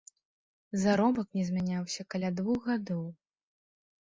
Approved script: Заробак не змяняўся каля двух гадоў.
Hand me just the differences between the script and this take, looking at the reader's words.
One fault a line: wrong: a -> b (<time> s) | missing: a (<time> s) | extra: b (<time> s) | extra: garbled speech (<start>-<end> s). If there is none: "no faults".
no faults